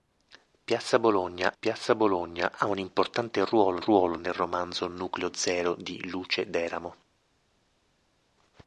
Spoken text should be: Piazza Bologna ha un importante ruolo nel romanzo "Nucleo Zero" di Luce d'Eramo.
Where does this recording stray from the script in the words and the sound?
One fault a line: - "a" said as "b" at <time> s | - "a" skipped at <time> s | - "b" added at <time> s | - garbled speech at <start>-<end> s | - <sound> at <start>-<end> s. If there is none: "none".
- "piazza Bologna" added at 1.6 s
- "ruolo" added at 3.8 s